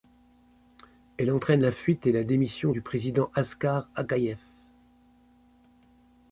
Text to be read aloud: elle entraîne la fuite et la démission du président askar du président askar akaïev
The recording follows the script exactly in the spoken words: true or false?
false